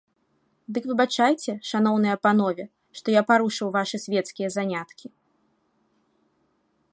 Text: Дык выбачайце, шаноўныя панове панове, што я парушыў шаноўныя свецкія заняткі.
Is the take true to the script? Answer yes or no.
no